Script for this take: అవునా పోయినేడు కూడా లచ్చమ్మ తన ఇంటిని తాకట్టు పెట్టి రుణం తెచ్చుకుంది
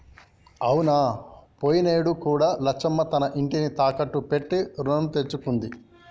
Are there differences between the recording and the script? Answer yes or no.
no